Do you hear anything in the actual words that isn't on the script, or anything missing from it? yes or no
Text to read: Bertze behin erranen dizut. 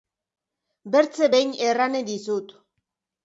no